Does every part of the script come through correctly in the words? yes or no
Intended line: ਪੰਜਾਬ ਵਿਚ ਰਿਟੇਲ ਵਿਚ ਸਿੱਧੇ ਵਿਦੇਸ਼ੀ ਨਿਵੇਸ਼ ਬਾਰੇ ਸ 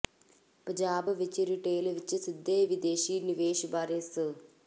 yes